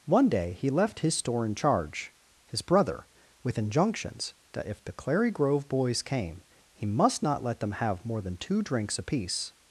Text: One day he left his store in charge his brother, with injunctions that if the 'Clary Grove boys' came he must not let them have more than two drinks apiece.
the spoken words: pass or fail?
pass